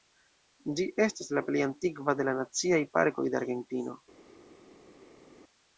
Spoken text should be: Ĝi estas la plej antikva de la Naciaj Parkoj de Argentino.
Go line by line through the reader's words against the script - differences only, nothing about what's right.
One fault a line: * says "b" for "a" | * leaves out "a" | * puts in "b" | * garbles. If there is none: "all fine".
all fine